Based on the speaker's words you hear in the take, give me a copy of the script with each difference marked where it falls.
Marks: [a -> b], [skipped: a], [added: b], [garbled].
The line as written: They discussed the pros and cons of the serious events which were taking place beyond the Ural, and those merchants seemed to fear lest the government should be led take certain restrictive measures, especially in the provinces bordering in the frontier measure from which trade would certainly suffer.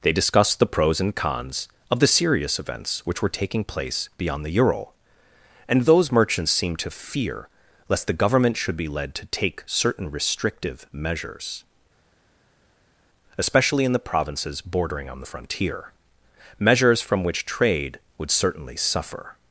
They discussed the pros and cons of the serious events which were taking place beyond the Ural, and those merchants seemed to fear lest the government should be led [added: to] take certain restrictive measures, especially in the provinces bordering [in -> on] the frontier [measure -> measures] from which trade would certainly suffer.